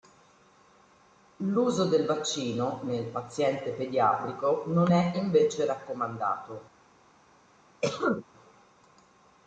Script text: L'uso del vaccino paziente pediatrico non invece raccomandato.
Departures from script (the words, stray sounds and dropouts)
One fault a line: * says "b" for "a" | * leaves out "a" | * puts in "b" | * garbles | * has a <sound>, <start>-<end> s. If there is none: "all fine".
* puts in "nel"
* puts in "è"
* has a cough, 7.8-8.3 s